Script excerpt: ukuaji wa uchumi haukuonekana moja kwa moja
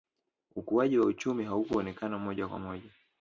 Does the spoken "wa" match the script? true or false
true